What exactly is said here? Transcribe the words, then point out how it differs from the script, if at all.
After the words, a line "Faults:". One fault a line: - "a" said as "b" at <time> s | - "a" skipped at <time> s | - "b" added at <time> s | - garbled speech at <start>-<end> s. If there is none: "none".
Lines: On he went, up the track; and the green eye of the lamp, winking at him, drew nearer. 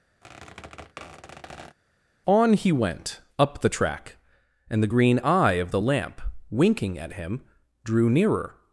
On he went, up the track; and the green eye of the lamp, winking at him, drew nearer.
Faults:
none